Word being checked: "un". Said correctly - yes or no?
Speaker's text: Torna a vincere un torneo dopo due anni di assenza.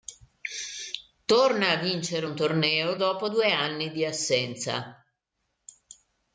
yes